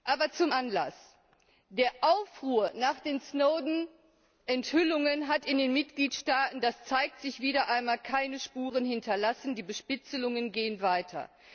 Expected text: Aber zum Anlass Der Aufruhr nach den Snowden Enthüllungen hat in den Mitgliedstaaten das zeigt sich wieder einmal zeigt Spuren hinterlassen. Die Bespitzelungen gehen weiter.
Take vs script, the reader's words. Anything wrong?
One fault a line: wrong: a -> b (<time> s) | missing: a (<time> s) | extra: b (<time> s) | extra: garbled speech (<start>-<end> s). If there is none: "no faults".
wrong: zeigt -> keine (8.0 s)